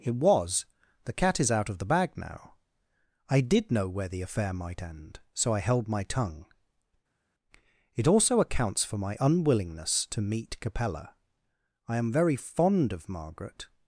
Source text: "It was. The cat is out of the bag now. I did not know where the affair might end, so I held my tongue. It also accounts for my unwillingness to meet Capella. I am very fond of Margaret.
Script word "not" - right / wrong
wrong